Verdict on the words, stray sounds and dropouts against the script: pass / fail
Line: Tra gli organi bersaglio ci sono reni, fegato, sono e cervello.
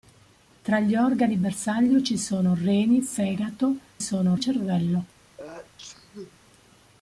fail